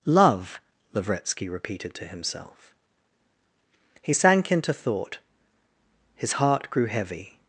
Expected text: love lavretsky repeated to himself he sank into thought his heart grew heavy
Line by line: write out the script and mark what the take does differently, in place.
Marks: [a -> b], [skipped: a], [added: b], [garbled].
love lavretsky repeated to himself he sank into thought his heart grew heavy